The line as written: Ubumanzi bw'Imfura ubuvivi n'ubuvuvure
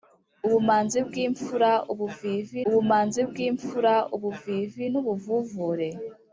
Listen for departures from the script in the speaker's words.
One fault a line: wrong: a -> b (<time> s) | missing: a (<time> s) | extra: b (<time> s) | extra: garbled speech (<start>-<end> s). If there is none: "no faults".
extra: ubumanzi bw'Imfura ubuvivi (2.7 s)